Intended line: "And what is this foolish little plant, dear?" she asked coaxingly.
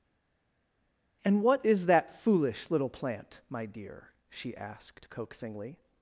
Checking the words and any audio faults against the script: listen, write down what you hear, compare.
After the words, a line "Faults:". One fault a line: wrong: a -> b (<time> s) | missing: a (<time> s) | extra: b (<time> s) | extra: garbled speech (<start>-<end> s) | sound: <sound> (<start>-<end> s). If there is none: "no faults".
"And what is that foolish little plant, my dear?" she asked coaxingly.
Faults:
wrong: this -> that (1.9 s)
extra: my (3.5 s)